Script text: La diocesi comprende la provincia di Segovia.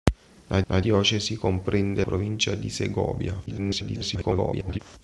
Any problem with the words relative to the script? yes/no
yes